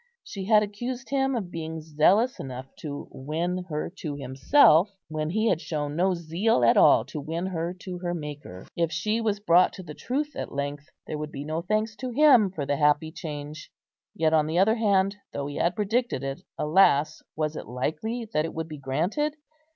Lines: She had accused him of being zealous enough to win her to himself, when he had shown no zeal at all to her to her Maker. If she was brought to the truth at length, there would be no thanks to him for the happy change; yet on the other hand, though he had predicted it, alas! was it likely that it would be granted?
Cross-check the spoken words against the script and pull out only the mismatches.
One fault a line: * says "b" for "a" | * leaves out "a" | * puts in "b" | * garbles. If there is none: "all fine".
* puts in "win"